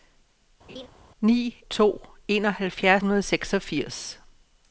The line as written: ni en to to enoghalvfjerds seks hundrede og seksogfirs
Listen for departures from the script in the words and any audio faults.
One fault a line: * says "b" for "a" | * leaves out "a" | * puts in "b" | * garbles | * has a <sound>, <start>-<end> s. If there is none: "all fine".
* has a laugh, 0.7-0.9 s
* leaves out "en"
* leaves out "to"
* leaves out "seks"